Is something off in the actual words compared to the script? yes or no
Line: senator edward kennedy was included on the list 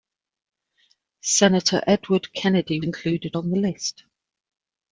yes